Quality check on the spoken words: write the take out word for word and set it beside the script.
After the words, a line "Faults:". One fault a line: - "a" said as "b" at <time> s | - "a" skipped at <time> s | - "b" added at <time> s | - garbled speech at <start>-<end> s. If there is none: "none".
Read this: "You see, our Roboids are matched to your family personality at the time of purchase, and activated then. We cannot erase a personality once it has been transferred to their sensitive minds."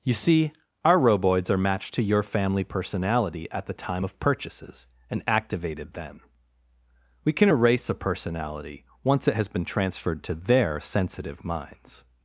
"You see, our Roboids are matched to your family personality at the time of purchases, and activated then. We can erase a personality once it has been transferred to their sensitive minds."
Faults:
- "purchase" said as "purchases" at 4.2 s
- "cannot" said as "can" at 7.3 s